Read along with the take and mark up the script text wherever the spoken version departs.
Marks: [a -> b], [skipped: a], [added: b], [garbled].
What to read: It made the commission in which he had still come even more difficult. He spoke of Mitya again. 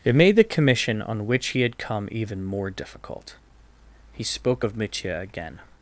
It made the commission [in -> on] which he had [skipped: still] come even more difficult. He spoke of Mitya again.